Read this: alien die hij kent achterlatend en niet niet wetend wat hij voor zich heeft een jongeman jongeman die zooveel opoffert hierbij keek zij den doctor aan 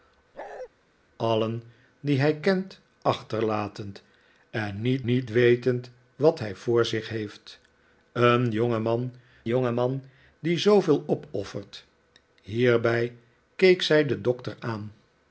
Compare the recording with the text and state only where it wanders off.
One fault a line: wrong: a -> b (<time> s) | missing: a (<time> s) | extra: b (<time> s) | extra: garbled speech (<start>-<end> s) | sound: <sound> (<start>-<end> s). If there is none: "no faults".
sound: bark (0.3-0.7 s)